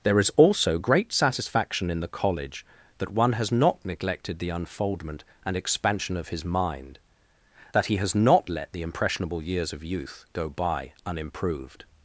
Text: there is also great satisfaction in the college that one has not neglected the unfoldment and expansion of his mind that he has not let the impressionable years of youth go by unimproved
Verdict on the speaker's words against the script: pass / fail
pass